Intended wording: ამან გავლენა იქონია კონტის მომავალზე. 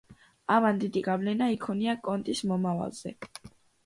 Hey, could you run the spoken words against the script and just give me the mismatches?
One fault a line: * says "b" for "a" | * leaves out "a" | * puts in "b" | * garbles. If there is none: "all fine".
* puts in "დიდი"